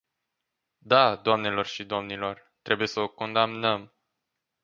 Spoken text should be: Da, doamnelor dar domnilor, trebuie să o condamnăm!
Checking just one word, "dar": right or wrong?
wrong